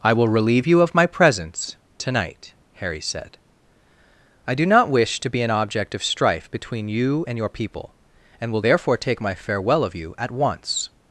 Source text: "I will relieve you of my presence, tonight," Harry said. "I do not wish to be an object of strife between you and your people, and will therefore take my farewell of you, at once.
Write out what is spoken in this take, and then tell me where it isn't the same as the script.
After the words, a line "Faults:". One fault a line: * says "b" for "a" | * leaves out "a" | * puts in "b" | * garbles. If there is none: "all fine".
"I will relieve you of my presence, tonight," Harry said. "I do not wish to be an object of strife between you and your people, and will therefore take my farewell of you, at once.
Faults:
all fine